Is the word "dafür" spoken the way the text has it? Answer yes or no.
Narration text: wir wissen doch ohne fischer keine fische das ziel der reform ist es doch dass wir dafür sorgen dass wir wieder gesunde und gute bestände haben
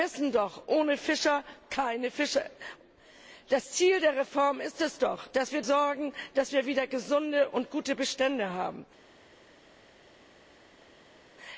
no